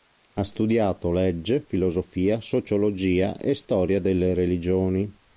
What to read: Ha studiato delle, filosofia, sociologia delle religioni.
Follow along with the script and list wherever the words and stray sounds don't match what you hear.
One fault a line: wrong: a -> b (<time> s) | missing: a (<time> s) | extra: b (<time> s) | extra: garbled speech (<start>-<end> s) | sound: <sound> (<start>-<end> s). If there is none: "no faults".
wrong: delle -> legge (1.1 s)
extra: e storia (3.4 s)